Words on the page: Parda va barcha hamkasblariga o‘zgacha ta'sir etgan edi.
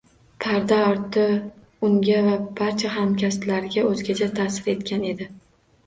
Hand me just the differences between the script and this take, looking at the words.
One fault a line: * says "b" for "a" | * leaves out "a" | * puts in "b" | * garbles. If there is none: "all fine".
* puts in "orti unga"